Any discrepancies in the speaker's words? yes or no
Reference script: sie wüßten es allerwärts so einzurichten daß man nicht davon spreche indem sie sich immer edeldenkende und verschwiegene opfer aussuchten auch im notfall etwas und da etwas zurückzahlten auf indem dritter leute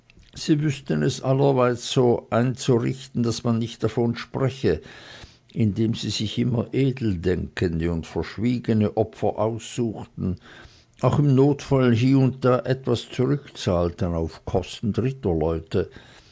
yes